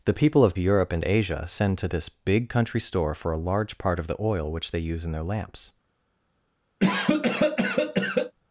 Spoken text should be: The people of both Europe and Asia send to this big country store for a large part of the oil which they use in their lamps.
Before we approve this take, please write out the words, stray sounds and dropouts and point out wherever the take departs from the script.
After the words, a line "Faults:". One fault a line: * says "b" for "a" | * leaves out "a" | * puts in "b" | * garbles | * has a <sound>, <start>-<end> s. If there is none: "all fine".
The people of Europe and Asia send to this big country store for a large part of the oil which they use in their lamps.
Faults:
* leaves out "both"
* has a cough, 6.8-8.3 s